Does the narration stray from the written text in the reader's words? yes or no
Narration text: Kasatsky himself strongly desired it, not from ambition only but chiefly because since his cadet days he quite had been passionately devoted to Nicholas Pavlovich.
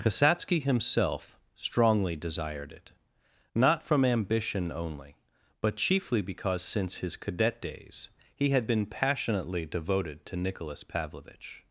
yes